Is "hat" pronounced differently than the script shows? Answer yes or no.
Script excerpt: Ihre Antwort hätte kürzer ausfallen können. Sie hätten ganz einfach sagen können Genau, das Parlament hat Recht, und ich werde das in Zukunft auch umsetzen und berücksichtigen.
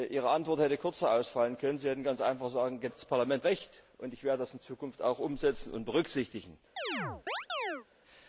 yes